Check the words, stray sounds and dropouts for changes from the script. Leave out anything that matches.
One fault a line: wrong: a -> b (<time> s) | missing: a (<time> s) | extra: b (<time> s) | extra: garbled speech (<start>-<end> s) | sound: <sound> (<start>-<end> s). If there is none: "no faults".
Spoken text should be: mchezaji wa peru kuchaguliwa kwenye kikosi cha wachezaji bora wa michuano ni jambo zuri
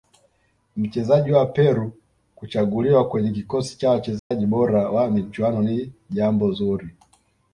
sound: dropout (4.2-4.3 s)